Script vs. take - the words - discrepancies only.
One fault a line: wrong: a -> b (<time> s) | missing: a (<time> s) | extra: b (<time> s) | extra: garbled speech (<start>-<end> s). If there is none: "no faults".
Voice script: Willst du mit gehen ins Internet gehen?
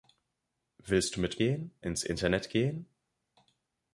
no faults